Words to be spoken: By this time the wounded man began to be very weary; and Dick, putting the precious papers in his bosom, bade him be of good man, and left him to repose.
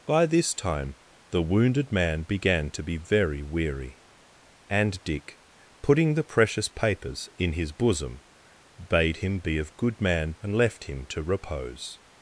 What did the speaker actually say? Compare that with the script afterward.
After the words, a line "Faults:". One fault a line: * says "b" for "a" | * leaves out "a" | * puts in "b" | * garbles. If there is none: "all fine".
By this time the wounded man began to be very weary; and Dick, putting the precious papers in his bosom, bade him be of good man, and left him to repose.
Faults:
all fine